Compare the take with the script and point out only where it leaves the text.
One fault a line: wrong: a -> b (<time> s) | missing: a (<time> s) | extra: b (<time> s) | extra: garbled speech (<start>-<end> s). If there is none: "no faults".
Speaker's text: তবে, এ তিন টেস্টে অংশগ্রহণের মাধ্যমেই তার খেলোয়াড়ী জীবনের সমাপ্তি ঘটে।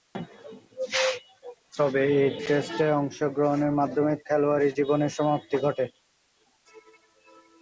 missing: তিন (2.4 s)
missing: তার (4.2 s)